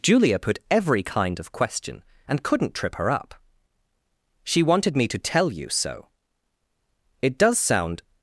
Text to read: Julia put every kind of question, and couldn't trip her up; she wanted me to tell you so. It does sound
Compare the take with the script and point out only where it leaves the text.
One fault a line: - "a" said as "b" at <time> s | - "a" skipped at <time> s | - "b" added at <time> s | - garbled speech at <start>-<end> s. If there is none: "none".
none